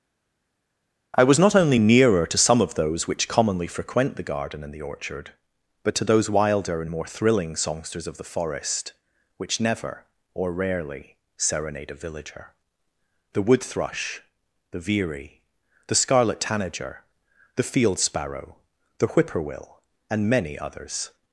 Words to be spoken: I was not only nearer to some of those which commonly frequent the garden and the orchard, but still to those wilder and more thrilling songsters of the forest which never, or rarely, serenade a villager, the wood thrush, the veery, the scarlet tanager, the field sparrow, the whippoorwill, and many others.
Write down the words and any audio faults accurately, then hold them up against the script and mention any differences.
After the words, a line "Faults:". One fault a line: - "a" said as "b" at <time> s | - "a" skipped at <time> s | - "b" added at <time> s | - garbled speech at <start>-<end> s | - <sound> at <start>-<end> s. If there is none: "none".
I was not only nearer to some of those which commonly frequent the garden and the orchard, but to those wilder and more thrilling songsters of the forest which never, or rarely, serenade a villager, the wood thrush, the veery, the scarlet tanager, the field sparrow, the whippoorwill, and many others.
Faults:
- "still" skipped at 5.9 s